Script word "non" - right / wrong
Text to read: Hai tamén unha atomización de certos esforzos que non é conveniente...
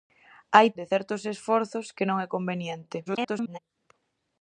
right